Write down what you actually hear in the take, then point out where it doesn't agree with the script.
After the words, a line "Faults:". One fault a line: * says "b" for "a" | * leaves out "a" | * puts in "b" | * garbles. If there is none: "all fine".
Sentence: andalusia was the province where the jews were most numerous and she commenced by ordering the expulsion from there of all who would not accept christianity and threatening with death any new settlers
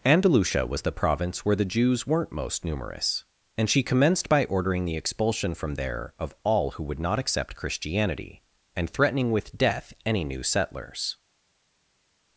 andalusia was the province where the jews weren't most numerous and she commenced by ordering the expulsion from there of all who would not accept christianity and threatening with death any new settlers
Faults:
* says "weren't" for "were"